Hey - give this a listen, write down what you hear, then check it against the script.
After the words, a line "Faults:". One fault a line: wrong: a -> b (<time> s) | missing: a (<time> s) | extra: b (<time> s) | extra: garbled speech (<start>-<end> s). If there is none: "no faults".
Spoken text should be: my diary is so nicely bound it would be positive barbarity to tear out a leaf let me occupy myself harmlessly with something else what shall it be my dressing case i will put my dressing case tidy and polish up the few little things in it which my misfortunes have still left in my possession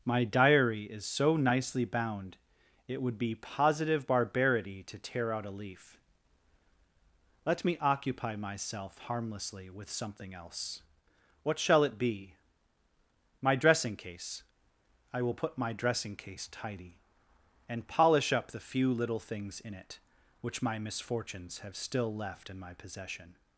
my diary is so nicely bound it would be positive barbarity to tear out a leaf let me occupy myself harmlessly with something else what shall it be my dressing case i will put my dressing case tidy and polish up the few little things in it which my misfortunes have still left in my possession
Faults:
no faults